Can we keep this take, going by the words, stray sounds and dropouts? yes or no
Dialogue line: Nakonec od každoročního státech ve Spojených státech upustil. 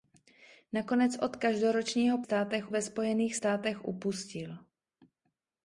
yes